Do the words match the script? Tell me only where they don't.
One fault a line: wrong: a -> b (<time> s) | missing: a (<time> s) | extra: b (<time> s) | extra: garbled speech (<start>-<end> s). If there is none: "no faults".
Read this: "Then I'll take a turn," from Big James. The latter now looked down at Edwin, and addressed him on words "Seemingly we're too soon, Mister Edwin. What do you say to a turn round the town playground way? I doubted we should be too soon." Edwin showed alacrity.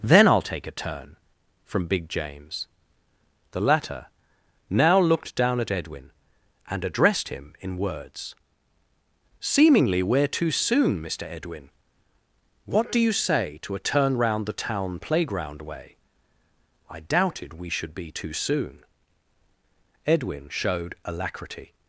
wrong: on -> in (7.6 s)